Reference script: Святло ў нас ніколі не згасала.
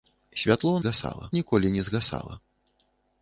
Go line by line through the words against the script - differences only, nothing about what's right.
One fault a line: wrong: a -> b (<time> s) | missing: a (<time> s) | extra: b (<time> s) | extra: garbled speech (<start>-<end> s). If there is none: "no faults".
wrong: нас -> згасала (0.8 s)